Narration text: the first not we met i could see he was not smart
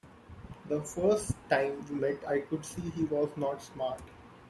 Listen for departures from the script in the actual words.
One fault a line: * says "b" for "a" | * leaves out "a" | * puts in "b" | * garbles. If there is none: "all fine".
* says "time" for "not"